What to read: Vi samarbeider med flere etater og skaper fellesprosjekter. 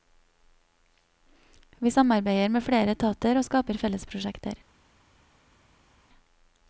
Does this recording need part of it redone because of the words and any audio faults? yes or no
no